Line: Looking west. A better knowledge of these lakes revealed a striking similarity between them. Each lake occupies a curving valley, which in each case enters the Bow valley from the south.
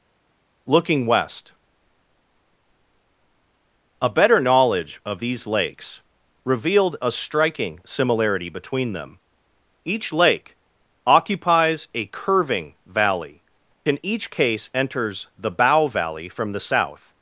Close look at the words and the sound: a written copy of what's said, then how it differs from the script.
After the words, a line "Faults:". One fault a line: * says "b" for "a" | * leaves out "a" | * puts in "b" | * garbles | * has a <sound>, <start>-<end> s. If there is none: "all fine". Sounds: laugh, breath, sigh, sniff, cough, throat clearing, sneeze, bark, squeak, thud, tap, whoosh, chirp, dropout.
Looking west. A better knowledge of these lakes revealed a striking similarity between them. Each lake occupies a curving valley, in each case enters the Bow valley from the south.
Faults:
* leaves out "which"